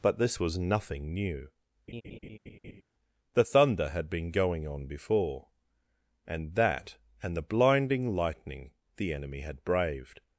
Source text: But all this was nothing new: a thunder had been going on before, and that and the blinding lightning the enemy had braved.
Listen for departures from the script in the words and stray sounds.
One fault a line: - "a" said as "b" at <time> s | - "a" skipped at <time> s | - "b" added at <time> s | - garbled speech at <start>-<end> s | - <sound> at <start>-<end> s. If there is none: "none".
- "all" skipped at 0.2 s
- laugh at 1.9-2.8 s
- "a" said as "the" at 3.3 s